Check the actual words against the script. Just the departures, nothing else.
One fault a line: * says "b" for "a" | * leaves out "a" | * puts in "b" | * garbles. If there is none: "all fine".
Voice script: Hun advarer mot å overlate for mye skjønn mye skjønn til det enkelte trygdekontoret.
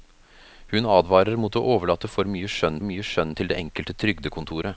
all fine